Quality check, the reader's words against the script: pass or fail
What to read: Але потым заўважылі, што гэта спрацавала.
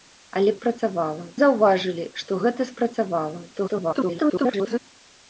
fail